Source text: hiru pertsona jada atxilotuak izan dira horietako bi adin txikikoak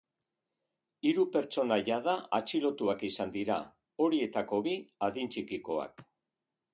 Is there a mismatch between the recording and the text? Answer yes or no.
no